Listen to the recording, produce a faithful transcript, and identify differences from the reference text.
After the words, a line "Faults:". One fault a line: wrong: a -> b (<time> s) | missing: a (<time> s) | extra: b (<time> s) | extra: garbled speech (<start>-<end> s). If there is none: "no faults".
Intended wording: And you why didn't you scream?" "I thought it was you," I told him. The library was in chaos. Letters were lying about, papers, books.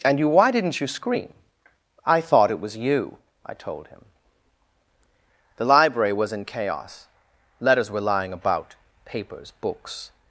And you why didn't you scream?" "I thought it was you," I told him. The library was in chaos. Letters were lying about, papers, books.
Faults:
no faults